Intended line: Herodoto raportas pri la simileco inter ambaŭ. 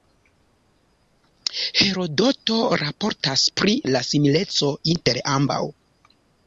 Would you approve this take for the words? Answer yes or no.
yes